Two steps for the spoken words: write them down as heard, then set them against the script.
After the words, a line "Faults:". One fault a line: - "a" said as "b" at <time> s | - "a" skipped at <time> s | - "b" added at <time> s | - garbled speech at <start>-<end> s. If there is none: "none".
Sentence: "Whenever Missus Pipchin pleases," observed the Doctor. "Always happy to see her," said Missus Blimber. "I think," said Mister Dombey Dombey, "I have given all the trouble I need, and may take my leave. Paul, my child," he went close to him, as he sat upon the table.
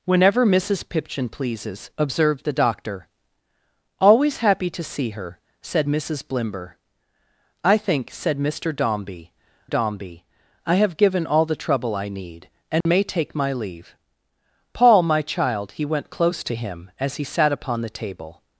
"Whenever Missus Pipchin pleases," observed the Doctor. "Always happy to see her," said Missus Blimber. "I think," said Mister Dombey Dombey, "I have given all the trouble I need, and may take my leave. Paul, my child," he went close to him, as he sat upon the table.
Faults:
none